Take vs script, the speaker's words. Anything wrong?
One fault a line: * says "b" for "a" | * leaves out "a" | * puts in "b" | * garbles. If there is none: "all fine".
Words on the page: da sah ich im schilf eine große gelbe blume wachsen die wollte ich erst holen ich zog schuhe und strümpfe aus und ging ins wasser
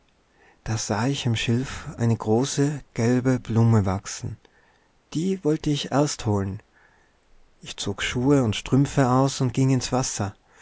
all fine